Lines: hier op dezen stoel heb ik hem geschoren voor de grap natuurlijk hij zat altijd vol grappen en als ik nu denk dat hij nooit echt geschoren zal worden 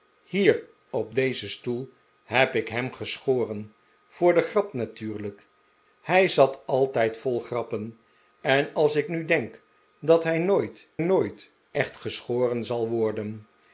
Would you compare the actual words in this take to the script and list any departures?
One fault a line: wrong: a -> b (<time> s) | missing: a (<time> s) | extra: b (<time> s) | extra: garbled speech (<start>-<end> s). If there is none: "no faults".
extra: nooit (11.0 s)